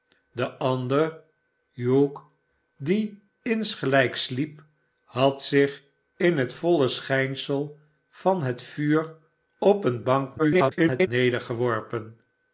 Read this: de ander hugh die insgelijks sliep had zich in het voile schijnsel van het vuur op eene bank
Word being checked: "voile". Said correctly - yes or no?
yes